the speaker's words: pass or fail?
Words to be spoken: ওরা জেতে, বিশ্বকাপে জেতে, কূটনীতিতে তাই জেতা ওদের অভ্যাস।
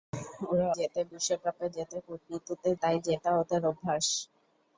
pass